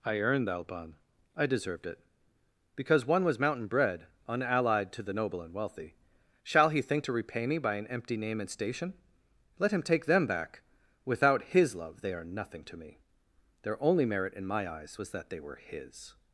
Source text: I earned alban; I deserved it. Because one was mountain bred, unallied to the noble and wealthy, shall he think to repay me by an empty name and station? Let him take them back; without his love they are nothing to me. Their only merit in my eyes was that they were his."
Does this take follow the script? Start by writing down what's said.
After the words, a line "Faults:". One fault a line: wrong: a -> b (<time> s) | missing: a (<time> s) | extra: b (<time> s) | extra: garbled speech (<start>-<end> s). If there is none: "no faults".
I earned alban; I deserved it. Because one was mountain bred, unallied to the noble and wealthy, shall he think to repay me by an empty name and station? Let him take them back; without his love they are nothing to me. Their only merit in my eyes was that they were his."
Faults:
no faults